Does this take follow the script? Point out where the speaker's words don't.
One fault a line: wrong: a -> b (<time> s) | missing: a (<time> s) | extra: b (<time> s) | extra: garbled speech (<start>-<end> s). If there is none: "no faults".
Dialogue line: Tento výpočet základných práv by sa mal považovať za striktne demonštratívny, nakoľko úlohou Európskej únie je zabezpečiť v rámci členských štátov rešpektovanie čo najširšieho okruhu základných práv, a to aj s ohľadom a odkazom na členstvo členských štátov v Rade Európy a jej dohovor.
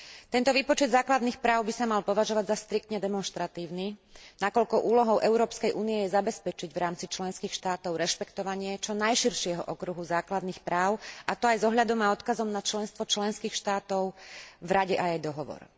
missing: Európy (14.9 s)